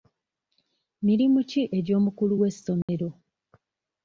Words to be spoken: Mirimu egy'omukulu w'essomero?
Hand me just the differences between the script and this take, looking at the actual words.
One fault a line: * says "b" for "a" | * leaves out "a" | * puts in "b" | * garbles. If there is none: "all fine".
* puts in "ki"